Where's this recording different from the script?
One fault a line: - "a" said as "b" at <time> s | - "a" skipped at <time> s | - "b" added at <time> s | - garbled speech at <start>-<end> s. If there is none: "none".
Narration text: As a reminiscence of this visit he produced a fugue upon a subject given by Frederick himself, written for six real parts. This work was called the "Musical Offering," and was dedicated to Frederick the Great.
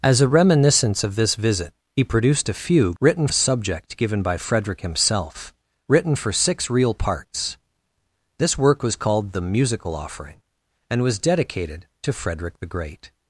- "upon" said as "written" at 3.0 s